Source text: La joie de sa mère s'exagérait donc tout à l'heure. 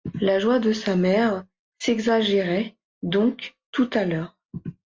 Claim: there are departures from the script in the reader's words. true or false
false